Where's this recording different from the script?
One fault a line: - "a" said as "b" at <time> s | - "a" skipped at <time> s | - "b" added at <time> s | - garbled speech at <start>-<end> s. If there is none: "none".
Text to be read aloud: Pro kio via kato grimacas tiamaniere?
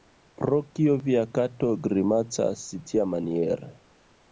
none